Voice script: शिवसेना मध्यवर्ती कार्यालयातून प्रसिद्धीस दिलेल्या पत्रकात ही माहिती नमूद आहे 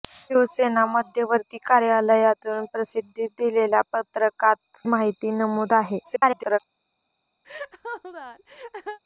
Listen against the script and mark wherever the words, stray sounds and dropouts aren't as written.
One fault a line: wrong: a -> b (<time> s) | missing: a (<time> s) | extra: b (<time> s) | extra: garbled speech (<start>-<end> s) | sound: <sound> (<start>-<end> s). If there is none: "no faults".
missing: ही (4.5 s)
extra: garbled speech (6.0-6.6 s)
sound: laugh (7.4-9.0 s)